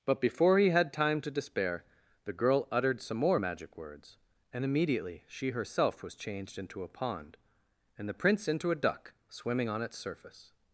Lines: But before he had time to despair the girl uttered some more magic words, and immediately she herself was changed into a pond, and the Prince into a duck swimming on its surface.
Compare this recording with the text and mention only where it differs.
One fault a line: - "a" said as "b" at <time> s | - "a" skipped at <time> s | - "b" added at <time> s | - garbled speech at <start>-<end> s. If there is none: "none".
none